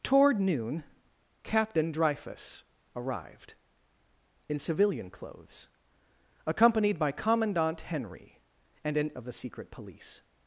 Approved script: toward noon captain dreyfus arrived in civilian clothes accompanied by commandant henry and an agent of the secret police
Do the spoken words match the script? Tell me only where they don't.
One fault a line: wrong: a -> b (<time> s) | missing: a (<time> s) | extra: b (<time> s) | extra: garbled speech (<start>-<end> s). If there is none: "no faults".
missing: agent (9.1 s)